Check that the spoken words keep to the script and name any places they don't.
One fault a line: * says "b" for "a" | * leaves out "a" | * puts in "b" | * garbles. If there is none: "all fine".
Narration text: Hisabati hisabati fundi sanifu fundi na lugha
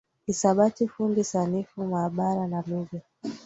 * leaves out "hisabati"
* says "maabara" for "fundi"